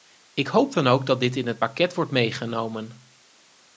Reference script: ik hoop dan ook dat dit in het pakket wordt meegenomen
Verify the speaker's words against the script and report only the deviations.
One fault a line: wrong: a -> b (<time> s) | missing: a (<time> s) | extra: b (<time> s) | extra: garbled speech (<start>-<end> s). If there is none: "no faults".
no faults